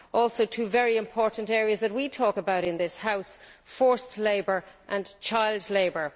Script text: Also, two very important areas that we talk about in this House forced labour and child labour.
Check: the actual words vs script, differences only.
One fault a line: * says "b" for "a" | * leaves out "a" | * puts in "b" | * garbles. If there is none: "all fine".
all fine